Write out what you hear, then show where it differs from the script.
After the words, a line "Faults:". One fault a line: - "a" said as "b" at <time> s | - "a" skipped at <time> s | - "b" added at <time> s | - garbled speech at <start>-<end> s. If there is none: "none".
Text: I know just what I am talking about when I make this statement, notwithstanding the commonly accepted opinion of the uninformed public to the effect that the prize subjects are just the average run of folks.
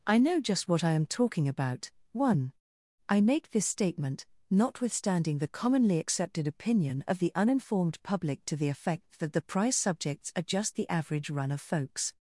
I know just what I am talking about one I make this statement, notwithstanding the commonly accepted opinion of the uninformed public to the effect that the prize subjects are just the average run of folks.
Faults:
- "when" said as "one" at 2.1 s